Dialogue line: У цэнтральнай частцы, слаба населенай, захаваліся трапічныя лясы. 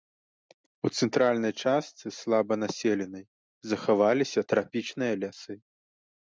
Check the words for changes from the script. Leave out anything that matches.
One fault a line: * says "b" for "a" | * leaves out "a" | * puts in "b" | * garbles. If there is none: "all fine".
all fine